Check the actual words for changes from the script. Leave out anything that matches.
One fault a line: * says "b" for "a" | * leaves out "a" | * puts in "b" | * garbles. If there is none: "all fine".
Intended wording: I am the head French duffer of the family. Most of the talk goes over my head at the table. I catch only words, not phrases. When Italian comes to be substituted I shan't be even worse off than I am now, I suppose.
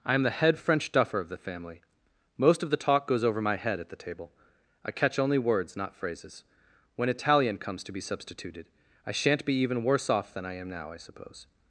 all fine